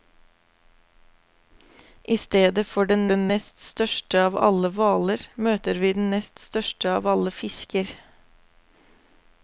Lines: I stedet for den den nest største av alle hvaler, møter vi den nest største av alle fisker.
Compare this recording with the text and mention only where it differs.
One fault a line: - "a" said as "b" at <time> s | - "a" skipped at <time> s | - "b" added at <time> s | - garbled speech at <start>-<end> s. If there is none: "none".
none